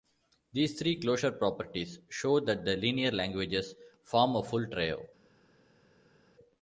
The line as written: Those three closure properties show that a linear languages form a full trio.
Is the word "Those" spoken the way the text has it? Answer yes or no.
no